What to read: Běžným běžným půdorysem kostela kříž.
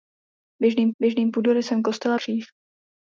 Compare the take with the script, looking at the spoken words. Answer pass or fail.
pass